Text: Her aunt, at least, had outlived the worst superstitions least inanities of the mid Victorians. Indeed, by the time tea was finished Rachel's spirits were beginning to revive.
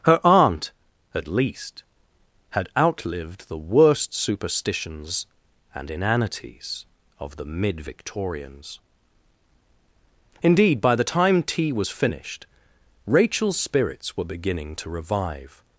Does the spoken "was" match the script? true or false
true